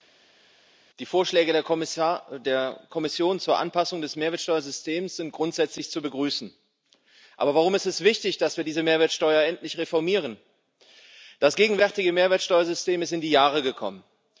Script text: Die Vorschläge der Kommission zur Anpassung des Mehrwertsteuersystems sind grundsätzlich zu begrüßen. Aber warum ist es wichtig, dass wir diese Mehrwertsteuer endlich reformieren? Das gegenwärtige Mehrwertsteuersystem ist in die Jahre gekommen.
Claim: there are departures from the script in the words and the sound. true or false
false